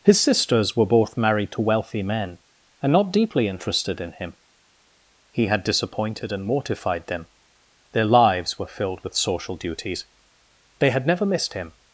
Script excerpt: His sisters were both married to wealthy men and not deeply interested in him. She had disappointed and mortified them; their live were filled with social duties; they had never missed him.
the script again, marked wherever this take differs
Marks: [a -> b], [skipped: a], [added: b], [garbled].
His sisters were both married to wealthy men and not deeply interested in him. [She -> He] had disappointed and mortified them; their [live -> lives] were filled with social duties; they had never missed him.